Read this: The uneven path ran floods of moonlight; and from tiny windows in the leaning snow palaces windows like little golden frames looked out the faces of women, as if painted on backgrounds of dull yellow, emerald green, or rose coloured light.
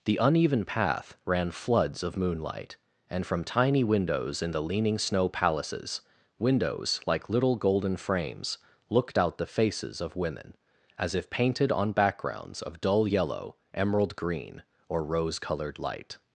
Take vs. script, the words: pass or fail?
pass